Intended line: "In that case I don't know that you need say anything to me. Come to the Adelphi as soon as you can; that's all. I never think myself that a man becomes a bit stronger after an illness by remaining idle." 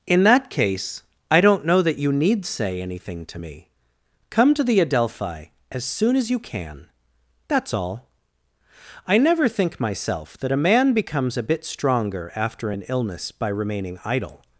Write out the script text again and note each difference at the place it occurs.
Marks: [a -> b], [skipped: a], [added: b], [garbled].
"In that case I don't know that you need say anything to me. Come to the Adelphi as soon as you can; that's all. I never think myself that a man becomes a bit stronger after an illness by remaining idle."